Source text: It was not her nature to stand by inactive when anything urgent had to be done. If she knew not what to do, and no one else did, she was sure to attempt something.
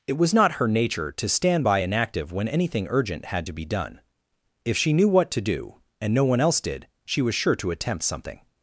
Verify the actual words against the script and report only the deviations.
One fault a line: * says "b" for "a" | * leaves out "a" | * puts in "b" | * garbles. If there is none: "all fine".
* leaves out "not"